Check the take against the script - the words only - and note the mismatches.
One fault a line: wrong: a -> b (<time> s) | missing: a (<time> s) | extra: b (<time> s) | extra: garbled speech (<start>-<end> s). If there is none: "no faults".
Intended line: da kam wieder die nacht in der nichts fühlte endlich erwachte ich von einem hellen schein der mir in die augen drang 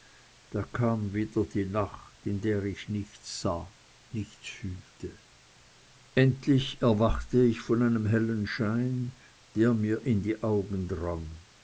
extra: ich nichts sah (2.6 s)